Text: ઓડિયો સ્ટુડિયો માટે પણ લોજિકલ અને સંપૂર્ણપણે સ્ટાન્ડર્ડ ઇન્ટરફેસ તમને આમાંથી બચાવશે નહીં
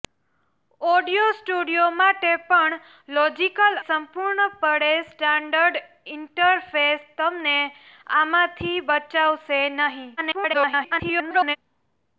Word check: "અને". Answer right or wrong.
wrong